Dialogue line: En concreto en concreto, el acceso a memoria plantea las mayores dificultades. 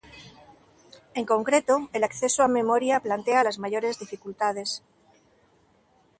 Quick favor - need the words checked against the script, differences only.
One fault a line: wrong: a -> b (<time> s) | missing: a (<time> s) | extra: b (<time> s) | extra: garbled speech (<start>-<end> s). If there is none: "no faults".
missing: en concreto (1.9 s)